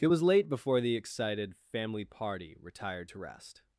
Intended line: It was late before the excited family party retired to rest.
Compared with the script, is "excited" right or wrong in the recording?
right